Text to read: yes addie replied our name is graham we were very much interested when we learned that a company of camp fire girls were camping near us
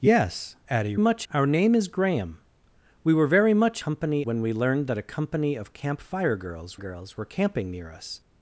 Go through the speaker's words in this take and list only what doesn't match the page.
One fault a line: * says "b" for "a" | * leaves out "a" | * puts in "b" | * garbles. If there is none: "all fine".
* says "much" for "replied"
* says "company" for "interested"
* puts in "girls"